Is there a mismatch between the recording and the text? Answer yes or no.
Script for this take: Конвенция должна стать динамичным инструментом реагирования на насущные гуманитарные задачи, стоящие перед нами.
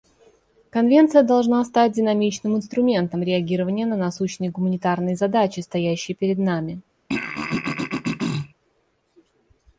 no